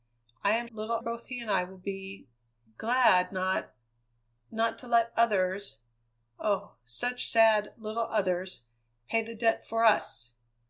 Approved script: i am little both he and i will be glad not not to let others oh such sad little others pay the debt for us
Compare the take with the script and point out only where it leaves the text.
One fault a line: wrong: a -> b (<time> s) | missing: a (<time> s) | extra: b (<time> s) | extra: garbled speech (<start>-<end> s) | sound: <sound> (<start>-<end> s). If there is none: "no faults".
no faults